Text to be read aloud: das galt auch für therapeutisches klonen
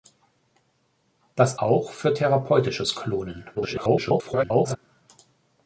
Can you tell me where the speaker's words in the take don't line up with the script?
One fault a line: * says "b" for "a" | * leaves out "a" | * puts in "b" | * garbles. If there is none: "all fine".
* leaves out "galt"
* garbles